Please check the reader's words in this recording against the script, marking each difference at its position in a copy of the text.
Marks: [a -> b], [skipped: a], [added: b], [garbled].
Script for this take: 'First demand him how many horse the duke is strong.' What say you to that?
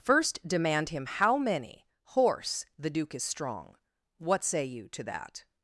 'First demand him how many horse the duke is strong.' What say you to that?